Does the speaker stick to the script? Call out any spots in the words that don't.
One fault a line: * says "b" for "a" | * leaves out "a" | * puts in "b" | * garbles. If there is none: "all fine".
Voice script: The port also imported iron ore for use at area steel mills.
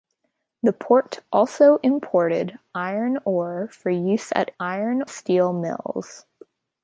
* says "iron" for "area"